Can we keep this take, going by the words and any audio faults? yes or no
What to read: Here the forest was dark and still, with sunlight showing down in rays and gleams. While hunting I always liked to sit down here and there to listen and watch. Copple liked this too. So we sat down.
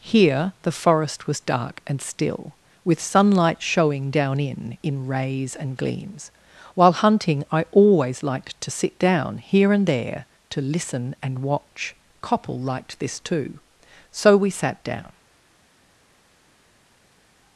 no